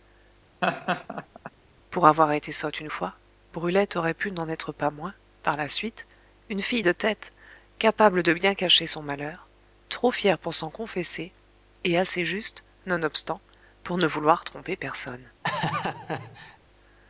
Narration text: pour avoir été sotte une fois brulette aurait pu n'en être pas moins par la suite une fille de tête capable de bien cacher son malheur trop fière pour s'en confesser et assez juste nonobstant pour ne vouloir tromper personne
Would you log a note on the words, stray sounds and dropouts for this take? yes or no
yes